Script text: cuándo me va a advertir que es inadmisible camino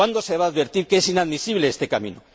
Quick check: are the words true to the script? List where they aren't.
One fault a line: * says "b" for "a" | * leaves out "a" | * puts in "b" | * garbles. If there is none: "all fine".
* says "se" for "me"
* puts in "este"